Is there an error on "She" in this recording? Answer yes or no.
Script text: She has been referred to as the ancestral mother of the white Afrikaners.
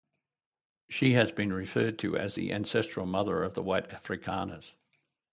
no